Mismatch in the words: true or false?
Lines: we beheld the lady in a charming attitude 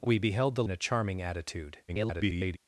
true